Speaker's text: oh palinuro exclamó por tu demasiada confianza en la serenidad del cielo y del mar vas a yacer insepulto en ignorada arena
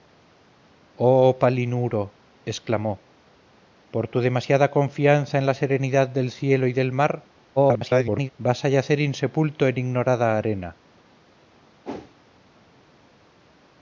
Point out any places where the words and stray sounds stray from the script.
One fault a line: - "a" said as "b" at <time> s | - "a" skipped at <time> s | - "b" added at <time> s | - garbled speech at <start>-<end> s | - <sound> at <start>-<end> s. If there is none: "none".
- garbled speech at 7.6-8.3 s
- whoosh at 11.8-12.1 s